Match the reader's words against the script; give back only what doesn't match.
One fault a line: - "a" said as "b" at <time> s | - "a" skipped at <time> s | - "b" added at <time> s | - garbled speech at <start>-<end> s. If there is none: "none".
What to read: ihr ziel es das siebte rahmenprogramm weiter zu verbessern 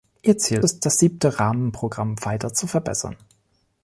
none